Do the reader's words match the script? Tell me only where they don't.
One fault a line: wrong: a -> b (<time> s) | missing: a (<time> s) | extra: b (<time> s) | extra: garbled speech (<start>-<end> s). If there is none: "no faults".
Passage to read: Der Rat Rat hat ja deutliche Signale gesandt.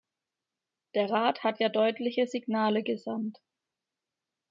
missing: Rat (1.4 s)